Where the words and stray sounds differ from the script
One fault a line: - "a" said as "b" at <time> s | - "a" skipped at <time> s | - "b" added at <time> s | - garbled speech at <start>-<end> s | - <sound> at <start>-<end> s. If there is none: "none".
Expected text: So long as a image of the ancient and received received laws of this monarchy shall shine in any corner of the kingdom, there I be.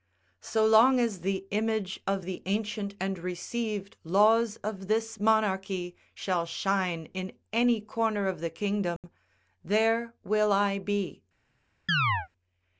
- "a" said as "the" at 1.2 s
- "received" skipped at 4.0 s
- dropout at 9.0-9.0 s
- "will" added at 10.2 s
- chirp at 11.9-12.3 s